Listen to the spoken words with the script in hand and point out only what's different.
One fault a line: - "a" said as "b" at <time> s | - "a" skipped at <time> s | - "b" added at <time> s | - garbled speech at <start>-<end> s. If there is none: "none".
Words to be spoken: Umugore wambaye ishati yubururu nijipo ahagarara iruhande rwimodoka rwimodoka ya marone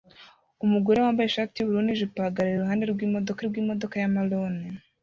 none